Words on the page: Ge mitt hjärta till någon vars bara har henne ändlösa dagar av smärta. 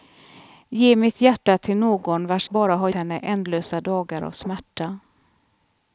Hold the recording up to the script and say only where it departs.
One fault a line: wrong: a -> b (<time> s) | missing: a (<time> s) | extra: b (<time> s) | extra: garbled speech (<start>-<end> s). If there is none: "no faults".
no faults